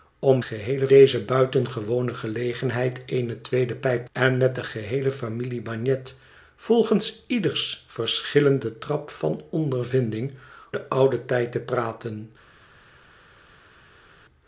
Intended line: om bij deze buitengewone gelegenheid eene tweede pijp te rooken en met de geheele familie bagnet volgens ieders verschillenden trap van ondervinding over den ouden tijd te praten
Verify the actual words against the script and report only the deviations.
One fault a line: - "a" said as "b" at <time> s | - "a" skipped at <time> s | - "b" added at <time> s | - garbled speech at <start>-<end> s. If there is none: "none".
- "bij" said as "geheele" at 0.4 s
- "te rooken" skipped at 4.0 s
- "over" skipped at 10.3 s